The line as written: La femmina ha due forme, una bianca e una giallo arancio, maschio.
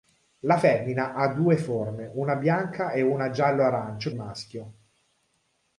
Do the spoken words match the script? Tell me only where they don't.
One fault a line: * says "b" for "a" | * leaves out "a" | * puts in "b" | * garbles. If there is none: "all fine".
all fine